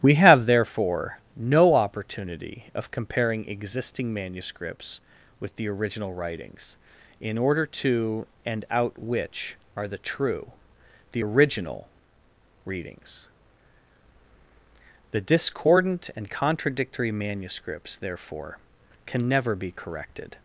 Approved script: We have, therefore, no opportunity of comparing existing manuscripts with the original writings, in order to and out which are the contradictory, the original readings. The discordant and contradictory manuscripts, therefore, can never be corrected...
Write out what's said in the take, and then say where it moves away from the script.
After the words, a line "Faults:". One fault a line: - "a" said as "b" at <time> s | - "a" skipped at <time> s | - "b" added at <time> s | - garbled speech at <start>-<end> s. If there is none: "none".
We have, therefore, no opportunity of comparing existing manuscripts with the original writings, in order to and out which are the true, the original readings. The discordant and contradictory manuscripts, therefore, can never be corrected...
Faults:
- "contradictory" said as "true" at 10.0 s